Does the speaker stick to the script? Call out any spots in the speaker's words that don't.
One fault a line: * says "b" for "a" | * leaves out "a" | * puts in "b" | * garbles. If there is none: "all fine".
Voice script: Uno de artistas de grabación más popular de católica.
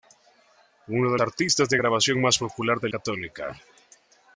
all fine